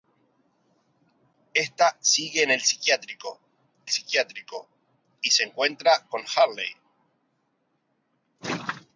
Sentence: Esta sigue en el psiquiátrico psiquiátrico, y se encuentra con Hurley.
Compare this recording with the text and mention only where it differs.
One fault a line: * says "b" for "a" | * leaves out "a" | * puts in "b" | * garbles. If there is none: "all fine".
all fine